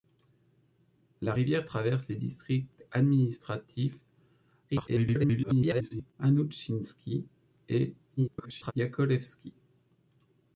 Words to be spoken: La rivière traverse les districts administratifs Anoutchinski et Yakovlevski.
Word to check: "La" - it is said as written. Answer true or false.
true